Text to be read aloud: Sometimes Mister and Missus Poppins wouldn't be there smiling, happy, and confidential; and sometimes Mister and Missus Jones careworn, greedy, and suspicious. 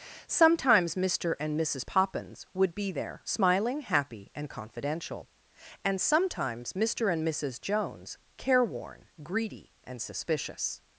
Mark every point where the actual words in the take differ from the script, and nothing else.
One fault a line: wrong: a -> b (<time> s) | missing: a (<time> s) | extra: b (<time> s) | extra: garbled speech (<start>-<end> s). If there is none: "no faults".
wrong: wouldn't -> would (2.5 s)